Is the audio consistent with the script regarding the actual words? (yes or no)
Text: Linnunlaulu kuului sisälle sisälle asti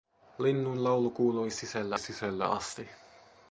yes